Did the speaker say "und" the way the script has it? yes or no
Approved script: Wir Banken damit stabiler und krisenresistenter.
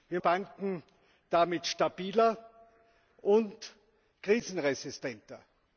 yes